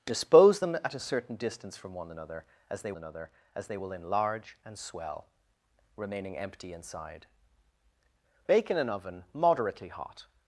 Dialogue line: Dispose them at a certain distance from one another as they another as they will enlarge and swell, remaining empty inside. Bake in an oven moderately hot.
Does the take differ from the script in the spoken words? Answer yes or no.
no